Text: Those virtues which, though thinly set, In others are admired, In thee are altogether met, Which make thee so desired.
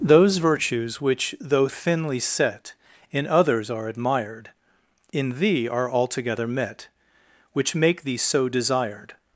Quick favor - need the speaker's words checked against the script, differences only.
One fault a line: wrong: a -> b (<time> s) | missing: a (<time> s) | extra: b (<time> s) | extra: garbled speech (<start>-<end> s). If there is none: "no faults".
no faults